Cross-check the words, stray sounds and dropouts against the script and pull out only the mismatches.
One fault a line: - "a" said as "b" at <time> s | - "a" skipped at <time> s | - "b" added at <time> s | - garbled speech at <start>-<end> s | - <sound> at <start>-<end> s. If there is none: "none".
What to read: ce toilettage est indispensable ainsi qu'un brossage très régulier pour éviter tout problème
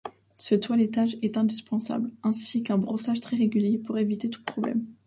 none